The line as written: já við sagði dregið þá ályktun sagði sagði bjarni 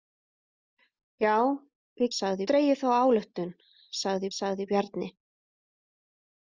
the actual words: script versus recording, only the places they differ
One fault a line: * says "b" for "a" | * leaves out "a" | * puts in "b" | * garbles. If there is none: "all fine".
all fine